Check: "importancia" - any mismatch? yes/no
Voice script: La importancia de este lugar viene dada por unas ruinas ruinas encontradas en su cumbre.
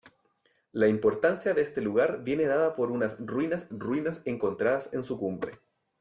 no